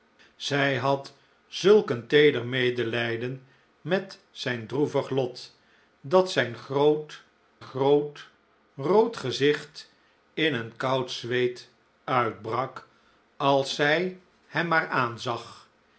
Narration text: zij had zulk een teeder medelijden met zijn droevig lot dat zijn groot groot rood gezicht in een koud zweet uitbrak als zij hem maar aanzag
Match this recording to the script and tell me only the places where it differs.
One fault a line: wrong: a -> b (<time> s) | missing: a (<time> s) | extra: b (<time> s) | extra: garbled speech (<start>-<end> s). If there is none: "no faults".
no faults